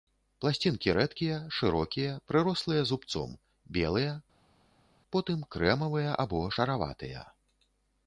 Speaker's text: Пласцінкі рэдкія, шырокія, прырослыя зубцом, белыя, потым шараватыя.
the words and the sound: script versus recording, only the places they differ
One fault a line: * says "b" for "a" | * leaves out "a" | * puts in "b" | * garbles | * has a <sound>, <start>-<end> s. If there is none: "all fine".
* puts in "крэмавыя або"